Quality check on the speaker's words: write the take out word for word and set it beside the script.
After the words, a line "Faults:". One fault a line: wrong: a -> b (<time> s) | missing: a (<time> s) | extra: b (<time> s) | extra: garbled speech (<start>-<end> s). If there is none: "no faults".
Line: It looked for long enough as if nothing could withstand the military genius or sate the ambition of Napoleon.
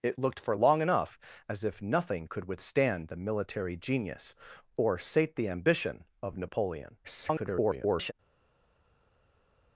It looked for long enough as if nothing could withstand the military genius or sate the ambition of Napoleon. [garbled]
Faults:
extra: garbled speech (7.0-8.1 s)